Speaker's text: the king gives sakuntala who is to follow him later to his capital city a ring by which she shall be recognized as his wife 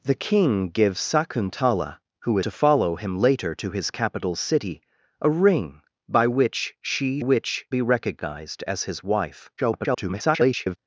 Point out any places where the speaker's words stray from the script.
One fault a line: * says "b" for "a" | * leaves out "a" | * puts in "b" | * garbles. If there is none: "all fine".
* leaves out "is"
* says "which" for "shall"
* garbles